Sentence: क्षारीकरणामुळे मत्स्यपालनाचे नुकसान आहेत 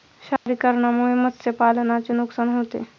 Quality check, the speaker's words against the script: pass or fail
fail